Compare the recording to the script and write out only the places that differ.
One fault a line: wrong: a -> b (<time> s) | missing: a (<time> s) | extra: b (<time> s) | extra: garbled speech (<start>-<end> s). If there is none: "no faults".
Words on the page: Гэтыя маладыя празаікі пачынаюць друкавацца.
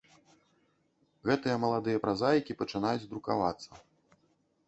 no faults